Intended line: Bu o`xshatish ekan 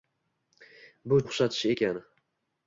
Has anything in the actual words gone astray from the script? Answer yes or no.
no